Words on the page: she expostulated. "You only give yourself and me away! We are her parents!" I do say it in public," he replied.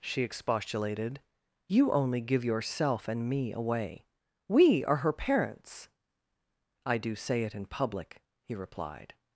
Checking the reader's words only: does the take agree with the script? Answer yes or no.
yes